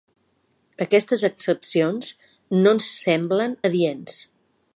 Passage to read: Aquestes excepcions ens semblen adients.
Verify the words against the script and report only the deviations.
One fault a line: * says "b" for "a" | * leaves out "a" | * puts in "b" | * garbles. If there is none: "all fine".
* puts in "no"